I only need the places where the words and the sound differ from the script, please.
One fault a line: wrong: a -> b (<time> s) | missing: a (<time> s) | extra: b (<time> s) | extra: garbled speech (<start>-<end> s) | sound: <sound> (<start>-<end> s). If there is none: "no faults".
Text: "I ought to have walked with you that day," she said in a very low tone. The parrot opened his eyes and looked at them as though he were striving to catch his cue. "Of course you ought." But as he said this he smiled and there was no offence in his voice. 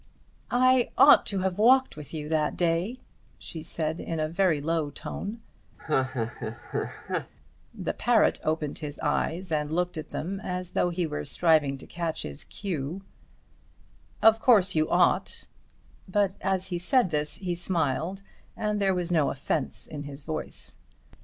sound: laugh (5.8-7.3 s)